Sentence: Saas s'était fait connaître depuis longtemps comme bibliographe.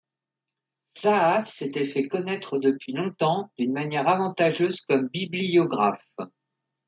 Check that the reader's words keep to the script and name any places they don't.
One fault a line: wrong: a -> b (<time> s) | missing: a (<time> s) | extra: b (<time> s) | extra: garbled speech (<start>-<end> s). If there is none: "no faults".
extra: d'une manière avantageuse (3.6 s)